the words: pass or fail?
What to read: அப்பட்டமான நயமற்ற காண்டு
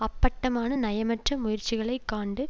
fail